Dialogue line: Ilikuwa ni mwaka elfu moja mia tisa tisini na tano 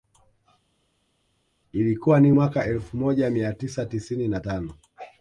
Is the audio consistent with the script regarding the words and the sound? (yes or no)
yes